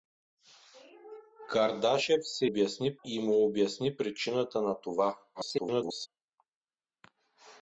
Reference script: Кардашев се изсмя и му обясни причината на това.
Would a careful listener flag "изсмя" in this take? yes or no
yes